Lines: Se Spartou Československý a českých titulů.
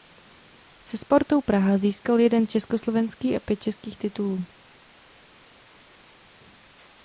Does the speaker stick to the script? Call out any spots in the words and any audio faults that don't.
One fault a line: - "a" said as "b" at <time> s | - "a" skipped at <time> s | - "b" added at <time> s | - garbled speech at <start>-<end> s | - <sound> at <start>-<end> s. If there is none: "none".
- "Praha získal jeden" added at 1.4 s
- "pět" added at 3.4 s